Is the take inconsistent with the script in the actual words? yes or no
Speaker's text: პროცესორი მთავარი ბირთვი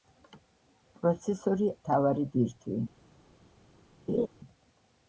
no